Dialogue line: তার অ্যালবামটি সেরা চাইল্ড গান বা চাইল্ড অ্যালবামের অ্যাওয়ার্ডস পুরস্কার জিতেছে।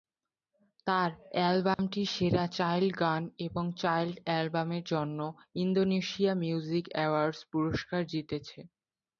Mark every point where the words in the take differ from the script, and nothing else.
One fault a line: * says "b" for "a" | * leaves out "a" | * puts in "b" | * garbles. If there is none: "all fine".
* says "এবং" for "বা"
* puts in "জন্য ইন্দোনেশিয়া মিউজিক"